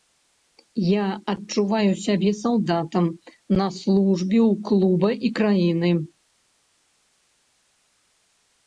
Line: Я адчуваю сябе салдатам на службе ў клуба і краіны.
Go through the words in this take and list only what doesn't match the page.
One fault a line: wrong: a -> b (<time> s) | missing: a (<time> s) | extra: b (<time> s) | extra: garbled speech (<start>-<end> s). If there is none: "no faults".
no faults